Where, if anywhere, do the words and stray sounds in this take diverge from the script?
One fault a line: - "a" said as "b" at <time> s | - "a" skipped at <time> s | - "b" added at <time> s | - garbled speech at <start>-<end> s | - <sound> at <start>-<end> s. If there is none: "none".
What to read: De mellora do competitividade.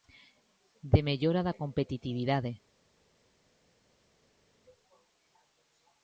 - "do" said as "da" at 1.5 s